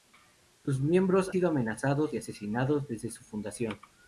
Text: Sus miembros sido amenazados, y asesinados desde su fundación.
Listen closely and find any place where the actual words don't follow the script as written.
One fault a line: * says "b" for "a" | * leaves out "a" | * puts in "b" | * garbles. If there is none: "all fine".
all fine